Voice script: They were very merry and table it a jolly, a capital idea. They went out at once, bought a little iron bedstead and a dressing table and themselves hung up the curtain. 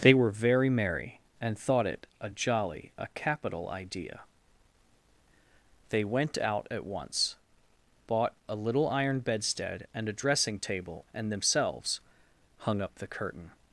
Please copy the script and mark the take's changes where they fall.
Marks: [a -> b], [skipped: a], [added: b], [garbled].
They were very merry and [table -> thought] it a jolly, a capital idea. They went out at once, bought a little iron bedstead and a dressing table and themselves hung up the curtain.